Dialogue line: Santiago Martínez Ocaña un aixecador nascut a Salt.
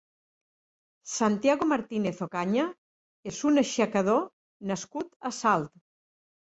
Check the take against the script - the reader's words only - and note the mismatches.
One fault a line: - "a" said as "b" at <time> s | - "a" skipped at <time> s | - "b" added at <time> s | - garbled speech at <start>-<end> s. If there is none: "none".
- "és" added at 3.3 s